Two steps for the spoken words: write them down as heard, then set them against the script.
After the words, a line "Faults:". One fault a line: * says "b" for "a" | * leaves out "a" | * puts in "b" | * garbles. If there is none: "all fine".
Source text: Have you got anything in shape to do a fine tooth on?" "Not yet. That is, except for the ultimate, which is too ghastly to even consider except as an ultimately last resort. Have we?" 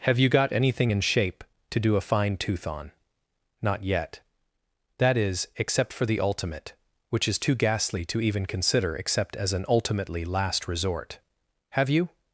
Have you got anything in shape to do a fine tooth on?" "Not yet. That is, except for the ultimate, which is too ghastly to even consider except as an ultimately last resort. Have you?"
Faults:
* says "you" for "we"